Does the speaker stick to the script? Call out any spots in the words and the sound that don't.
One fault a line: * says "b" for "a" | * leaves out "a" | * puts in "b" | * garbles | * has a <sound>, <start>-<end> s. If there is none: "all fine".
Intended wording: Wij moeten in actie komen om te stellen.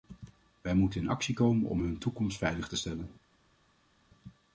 * puts in "hun toekomst veilig"